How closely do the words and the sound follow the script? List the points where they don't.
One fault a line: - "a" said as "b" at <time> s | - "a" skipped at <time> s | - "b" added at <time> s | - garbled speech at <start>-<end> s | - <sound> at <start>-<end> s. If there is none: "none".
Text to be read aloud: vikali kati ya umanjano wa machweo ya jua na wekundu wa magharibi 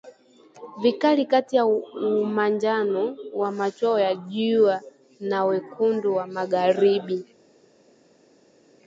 none